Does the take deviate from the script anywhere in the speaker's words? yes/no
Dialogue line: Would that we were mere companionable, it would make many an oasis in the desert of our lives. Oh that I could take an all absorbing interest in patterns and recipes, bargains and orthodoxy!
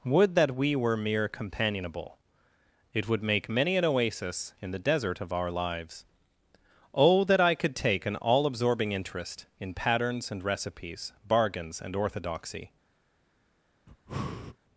no